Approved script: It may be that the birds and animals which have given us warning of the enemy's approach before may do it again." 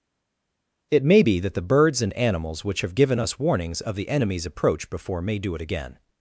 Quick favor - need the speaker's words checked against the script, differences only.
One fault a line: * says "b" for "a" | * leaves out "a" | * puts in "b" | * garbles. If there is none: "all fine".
* says "warnings" for "warning"